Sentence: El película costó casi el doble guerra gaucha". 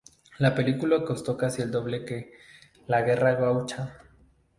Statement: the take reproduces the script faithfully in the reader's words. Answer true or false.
false